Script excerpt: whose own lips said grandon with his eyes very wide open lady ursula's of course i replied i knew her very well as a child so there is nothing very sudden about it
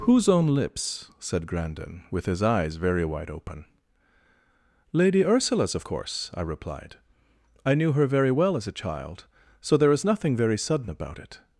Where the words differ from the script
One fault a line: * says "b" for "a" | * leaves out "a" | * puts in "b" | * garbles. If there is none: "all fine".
all fine